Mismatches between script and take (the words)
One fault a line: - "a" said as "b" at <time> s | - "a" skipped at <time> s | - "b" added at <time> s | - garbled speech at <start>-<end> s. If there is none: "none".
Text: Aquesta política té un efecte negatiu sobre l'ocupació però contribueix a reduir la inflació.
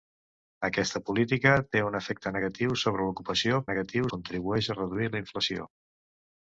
- "però" said as "negatiu" at 3.7 s